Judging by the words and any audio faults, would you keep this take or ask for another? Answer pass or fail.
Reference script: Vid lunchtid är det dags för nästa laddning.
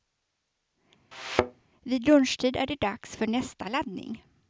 fail